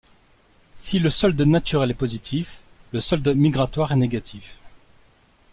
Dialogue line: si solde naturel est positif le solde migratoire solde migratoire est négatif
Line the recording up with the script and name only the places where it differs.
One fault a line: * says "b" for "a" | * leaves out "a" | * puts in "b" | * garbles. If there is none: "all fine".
* puts in "le"
* leaves out "solde migratoire"